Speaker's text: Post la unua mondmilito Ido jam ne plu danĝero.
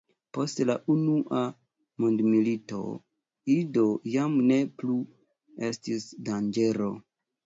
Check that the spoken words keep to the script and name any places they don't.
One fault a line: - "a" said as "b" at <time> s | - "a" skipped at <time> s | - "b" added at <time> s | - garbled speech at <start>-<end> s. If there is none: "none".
- "estis" added at 5.7 s